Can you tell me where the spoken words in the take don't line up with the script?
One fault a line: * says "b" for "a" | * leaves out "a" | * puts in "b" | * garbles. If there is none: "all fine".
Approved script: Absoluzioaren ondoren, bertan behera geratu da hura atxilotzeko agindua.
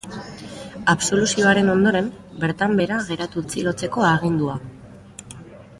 * leaves out "da hura"